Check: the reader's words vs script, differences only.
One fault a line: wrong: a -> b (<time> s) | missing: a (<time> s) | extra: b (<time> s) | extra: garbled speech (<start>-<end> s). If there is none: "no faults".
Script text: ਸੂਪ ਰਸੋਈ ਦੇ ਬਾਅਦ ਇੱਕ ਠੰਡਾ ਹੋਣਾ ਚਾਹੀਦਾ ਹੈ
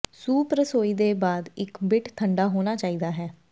extra: ਬਿੱਟ (1.8 s)